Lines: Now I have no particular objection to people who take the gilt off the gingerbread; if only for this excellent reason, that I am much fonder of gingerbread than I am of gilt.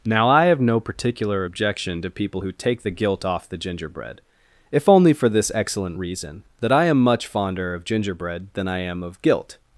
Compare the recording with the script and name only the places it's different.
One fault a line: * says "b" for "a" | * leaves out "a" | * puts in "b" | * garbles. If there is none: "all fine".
all fine